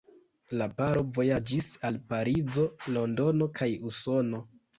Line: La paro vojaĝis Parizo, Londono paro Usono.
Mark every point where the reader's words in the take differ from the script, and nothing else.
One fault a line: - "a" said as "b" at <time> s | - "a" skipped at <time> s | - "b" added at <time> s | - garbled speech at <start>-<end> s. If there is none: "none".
- "al" added at 1.9 s
- "paro" said as "kaj" at 3.6 s